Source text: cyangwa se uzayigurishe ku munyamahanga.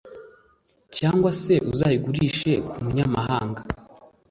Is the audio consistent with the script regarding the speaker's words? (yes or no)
yes